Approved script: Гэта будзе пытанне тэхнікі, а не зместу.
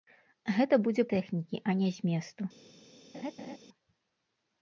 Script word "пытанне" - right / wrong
wrong